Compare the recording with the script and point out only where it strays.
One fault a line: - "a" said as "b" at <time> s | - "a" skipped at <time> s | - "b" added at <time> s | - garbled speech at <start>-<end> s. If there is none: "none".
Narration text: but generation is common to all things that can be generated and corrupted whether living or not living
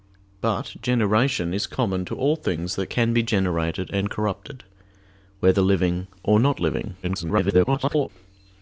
- garbled speech at 7.0-8.1 s